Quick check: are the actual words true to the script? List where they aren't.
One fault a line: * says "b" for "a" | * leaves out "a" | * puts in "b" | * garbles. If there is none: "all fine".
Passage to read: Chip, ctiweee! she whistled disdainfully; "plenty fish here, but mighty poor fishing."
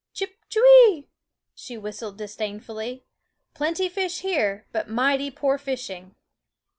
all fine